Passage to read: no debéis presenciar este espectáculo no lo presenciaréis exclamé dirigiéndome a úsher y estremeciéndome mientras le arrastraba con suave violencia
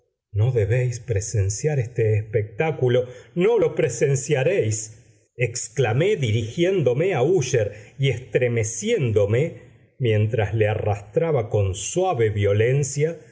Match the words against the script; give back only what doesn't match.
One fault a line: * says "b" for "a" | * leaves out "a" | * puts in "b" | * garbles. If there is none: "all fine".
all fine